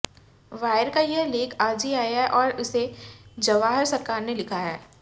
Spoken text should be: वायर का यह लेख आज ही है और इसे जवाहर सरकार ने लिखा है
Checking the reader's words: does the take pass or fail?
fail